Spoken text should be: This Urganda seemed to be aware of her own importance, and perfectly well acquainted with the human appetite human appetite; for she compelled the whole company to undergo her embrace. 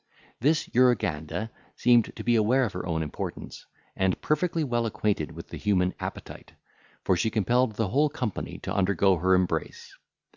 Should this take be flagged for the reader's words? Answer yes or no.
yes